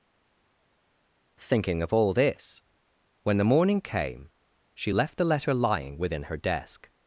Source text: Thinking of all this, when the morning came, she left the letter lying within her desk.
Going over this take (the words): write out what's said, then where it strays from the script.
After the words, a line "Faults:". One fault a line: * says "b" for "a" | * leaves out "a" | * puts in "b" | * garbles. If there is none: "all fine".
Thinking of all this, when the morning came, she left the letter lying within her desk.
Faults:
all fine